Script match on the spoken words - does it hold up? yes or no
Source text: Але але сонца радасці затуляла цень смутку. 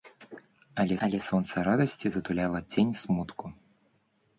yes